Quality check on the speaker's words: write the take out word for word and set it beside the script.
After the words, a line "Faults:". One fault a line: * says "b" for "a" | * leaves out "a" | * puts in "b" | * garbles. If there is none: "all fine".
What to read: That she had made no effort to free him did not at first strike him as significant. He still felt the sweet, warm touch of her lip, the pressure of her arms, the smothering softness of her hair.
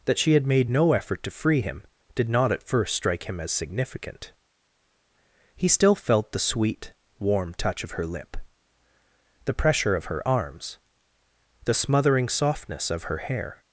That she had made no effort to free him did not at first strike him as significant. He still felt the sweet, warm touch of her lip, the pressure of her arms, the smothering softness of her hair.
Faults:
all fine